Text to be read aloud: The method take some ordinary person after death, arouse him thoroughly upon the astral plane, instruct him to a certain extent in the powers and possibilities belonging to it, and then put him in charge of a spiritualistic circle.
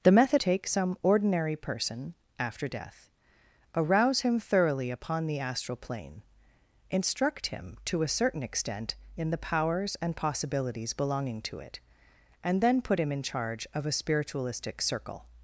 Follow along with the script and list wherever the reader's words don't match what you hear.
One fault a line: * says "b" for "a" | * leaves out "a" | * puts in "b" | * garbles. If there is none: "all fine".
all fine